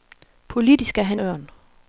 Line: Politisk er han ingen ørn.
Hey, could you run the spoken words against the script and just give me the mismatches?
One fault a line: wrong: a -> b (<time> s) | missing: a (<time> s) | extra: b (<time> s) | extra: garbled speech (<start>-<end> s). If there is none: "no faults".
missing: ingen (1.2 s)